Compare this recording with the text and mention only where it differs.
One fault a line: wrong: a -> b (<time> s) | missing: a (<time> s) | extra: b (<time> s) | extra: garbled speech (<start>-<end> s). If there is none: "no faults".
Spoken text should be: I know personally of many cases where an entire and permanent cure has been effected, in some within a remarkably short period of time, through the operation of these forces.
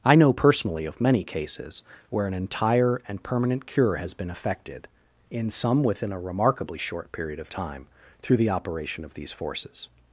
no faults